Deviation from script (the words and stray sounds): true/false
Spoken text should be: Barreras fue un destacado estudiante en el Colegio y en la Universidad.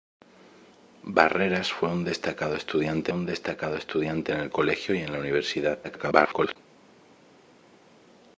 true